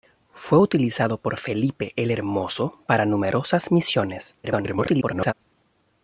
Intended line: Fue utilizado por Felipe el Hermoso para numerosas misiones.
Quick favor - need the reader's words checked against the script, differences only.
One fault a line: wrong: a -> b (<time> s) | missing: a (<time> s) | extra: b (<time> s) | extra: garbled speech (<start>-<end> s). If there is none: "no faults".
extra: garbled speech (4.4-5.3 s)